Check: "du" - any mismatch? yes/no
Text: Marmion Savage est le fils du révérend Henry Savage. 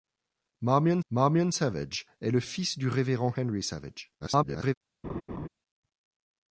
no